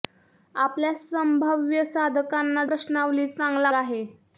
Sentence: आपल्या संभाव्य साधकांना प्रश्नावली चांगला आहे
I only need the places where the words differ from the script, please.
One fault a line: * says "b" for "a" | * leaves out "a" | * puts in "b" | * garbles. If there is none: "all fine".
all fine